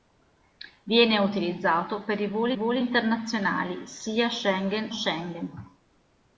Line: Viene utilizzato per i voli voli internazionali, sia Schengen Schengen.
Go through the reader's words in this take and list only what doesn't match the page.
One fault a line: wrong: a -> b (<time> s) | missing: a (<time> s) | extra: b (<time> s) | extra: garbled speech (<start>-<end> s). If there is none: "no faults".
no faults